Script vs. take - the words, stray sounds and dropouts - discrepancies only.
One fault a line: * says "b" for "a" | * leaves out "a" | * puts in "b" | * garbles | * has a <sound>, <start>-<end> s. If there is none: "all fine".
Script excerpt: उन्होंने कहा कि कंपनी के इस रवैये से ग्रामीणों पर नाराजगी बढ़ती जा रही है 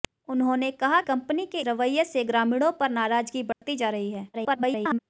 * leaves out "कि"
* leaves out "इस"
* has a dropout, 3.5-3.6 s
* garbles